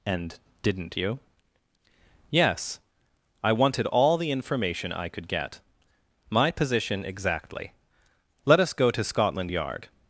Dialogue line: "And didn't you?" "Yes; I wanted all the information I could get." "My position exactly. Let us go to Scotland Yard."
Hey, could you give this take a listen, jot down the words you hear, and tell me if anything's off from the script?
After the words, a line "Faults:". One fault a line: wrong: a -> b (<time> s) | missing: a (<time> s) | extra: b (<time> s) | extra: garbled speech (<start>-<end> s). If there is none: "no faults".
"And didn't you?" "Yes; I wanted all the information I could get." "My position exactly. Let us go to Scotland Yard."
Faults:
no faults